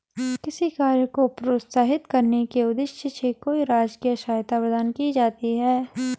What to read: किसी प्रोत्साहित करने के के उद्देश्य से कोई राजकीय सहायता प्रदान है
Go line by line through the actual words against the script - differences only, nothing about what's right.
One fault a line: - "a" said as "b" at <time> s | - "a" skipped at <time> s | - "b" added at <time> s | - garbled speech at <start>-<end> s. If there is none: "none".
- "कार्य को" added at 0.7 s
- "के" skipped at 2.6 s
- "की जाती" added at 4.9 s